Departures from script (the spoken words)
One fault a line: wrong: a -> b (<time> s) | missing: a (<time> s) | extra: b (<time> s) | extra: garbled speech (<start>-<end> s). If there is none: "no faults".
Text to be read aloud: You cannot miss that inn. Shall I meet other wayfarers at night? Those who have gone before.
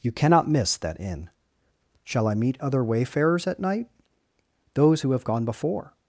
no faults